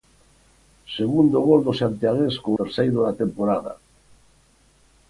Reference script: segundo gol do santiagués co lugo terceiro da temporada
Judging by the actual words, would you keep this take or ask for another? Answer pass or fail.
fail